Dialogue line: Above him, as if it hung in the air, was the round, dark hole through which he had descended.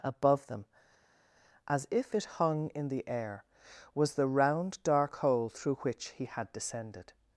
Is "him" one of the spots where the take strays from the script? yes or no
yes